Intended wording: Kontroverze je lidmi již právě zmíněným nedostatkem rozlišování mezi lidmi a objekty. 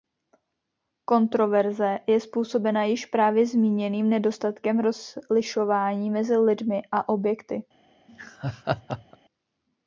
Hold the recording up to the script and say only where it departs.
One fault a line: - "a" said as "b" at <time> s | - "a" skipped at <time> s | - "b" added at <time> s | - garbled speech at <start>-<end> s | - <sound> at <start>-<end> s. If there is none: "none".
- "lidmi" said as "způsobena" at 2.2 s
- laugh at 8.1-9.2 s